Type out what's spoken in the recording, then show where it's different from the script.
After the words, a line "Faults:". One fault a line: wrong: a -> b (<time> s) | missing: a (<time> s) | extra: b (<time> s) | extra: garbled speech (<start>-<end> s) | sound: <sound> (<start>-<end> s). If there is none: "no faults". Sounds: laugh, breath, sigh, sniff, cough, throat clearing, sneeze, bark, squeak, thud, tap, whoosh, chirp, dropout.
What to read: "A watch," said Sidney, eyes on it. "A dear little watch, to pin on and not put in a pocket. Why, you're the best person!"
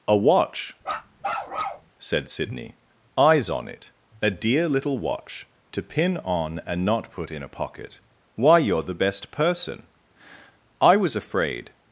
"A watch," said Sidney, eyes on it. "A dear little watch, to pin on and not put in a pocket. Why, you're the best person!" "I was afraid
Faults:
sound: bark (0.8-1.9 s)
extra: I was afraid (10.8 s)